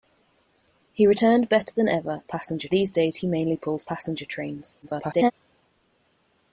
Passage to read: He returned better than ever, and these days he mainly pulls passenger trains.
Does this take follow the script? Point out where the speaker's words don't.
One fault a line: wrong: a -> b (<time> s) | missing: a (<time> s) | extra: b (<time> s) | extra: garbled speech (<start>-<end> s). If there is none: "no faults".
wrong: and -> passenger (2.3 s)
extra: garbled speech (4.8-5.3 s)